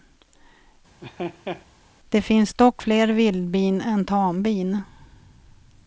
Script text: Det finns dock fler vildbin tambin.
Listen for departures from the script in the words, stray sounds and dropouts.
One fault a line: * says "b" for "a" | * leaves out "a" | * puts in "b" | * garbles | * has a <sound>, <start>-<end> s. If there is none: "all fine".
* has a laugh, 1.0-1.7 s
* puts in "än"